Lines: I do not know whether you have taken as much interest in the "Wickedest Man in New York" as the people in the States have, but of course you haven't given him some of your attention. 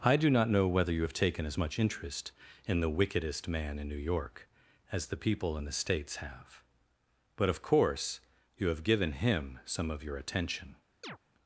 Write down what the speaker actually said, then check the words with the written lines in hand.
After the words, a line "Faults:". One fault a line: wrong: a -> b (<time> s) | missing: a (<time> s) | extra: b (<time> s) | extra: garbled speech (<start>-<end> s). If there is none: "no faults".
I do not know whether you have taken as much interest in the "Wickedest Man in New York" as the people in the States have, but of course you have given him some of your attention.
Faults:
wrong: haven't -> have (8.7 s)